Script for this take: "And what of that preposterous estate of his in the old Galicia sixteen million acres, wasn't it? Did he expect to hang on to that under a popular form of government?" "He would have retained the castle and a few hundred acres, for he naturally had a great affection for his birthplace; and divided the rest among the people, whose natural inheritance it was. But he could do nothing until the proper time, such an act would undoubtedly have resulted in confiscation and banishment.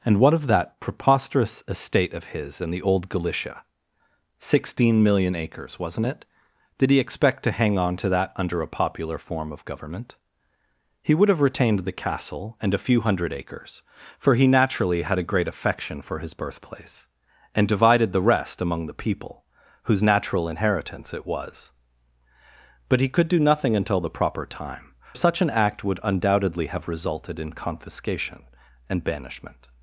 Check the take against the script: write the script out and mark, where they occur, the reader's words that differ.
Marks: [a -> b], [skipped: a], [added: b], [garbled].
"And what of that preposterous estate of his in the old Galicia sixteen million acres, wasn't it? Did he expect to hang on to that under a popular form of government?" "He would have retained the castle and a few hundred acres, for he naturally had a great affection for his birthplace; and divided the rest among the people, whose natural inheritance it was. But he could do nothing until the proper time, such an act would undoubtedly have resulted in confiscation and banishment.